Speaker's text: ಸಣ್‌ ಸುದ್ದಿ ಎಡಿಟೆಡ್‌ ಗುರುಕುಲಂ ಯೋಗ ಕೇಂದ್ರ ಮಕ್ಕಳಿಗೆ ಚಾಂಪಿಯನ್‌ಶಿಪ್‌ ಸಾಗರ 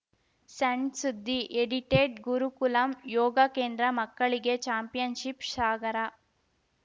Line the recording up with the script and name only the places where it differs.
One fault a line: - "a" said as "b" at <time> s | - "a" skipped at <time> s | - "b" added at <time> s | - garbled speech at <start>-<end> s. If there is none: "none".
none